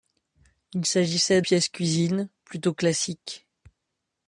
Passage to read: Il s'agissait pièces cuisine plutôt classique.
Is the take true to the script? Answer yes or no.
yes